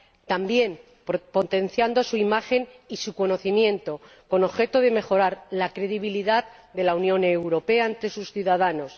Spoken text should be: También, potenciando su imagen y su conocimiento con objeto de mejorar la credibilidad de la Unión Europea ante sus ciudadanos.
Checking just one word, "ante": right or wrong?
right